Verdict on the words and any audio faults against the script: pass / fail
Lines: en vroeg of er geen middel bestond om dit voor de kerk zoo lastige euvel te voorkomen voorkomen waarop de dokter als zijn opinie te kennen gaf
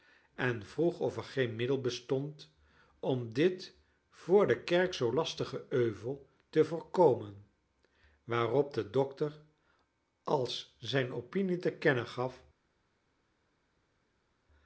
fail